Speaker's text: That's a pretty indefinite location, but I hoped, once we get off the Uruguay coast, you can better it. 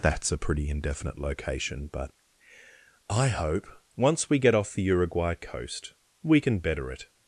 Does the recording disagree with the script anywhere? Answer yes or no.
yes